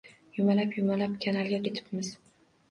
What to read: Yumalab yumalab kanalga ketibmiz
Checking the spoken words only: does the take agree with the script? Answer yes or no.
yes